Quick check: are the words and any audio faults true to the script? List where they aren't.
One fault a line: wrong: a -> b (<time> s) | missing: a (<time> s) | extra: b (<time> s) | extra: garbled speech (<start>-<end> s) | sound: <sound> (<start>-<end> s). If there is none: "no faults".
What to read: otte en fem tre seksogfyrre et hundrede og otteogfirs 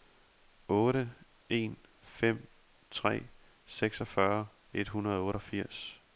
no faults